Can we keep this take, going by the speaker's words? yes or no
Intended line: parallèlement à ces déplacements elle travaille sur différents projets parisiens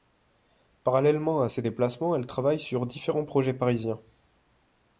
yes